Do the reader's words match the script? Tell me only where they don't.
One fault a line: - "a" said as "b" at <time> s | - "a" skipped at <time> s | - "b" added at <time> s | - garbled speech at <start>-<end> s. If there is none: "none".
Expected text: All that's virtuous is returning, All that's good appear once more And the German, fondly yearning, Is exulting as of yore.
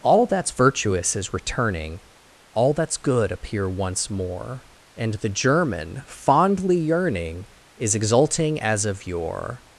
none